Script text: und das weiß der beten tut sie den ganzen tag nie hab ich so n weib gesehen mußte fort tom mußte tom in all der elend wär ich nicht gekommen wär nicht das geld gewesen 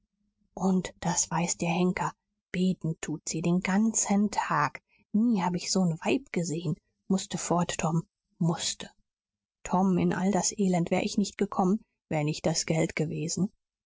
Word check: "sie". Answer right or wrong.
right